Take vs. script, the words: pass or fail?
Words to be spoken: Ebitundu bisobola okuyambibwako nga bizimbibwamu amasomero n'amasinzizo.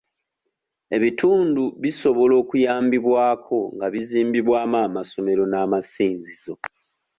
pass